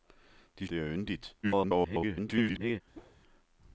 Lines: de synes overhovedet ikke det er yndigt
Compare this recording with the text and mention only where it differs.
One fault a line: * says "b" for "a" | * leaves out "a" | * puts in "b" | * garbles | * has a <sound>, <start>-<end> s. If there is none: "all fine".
* leaves out "synes overhovedet ikke"
* garbles
* has a whoosh, 2.9-3.2 s